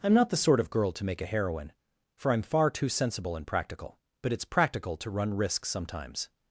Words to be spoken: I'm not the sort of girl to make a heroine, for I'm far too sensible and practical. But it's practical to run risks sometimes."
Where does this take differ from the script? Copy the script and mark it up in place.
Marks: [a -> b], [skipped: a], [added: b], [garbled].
I'm not the sort of girl to make a heroine, for I'm far too sensible and practical. But it's practical to run risks sometimes."